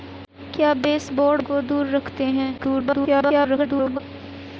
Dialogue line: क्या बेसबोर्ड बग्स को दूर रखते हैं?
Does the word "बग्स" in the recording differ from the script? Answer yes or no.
yes